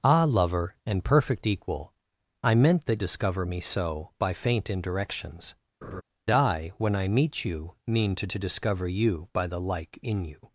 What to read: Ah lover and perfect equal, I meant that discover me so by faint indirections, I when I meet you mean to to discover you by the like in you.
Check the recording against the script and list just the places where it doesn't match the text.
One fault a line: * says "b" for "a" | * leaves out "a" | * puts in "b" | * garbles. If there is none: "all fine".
all fine